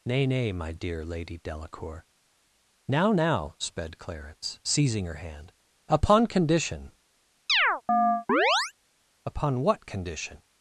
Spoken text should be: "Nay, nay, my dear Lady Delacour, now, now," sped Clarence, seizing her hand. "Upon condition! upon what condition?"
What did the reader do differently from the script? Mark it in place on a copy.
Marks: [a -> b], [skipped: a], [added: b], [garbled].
"Nay, nay, my dear Lady Delacour, now, now," sped Clarence, seizing her hand. "Upon condition! upon what condition?"